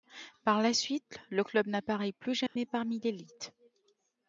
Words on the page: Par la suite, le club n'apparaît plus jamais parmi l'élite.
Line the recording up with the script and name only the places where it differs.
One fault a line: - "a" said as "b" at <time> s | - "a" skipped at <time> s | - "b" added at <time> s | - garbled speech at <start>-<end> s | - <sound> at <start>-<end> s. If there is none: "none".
- dropout at 2.5-2.6 s